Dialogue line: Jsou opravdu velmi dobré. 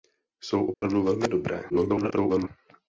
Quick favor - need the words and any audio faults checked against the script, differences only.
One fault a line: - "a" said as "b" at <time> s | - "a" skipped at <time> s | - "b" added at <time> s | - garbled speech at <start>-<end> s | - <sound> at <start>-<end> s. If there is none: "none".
- dropout at 0.7-0.8 s
- garbled speech at 1.7-2.5 s